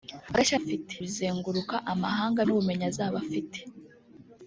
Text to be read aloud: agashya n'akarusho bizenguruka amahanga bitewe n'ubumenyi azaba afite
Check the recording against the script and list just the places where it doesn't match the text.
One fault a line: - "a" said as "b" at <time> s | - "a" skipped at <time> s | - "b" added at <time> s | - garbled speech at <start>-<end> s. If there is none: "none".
- "n'akarusho" said as "afite" at 0.6 s
- "bitewe" skipped at 2.4 s